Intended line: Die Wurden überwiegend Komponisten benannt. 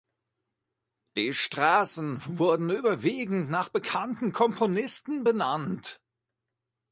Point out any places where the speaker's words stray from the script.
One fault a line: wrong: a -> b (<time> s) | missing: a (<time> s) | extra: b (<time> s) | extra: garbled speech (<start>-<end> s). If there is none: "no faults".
extra: Straßen (1.3 s)
extra: nach bekannten (3.5 s)